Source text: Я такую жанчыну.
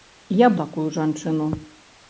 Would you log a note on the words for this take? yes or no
no